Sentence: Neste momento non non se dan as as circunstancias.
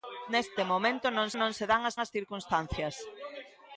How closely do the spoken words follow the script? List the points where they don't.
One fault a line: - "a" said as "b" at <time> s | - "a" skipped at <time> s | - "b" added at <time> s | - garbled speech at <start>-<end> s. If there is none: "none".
none